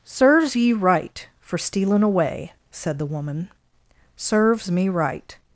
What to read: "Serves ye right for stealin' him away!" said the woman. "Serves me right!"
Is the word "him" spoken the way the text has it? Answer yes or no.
no